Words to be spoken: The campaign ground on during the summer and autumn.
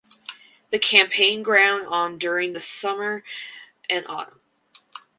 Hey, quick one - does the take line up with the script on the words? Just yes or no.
yes